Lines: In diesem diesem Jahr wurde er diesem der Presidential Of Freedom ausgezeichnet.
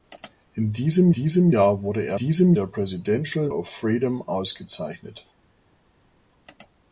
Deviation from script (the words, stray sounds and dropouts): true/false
false